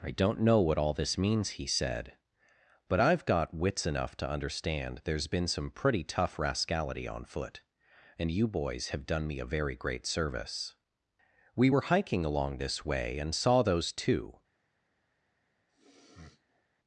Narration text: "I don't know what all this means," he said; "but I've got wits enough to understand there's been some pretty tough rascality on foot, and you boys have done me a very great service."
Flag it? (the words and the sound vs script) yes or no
yes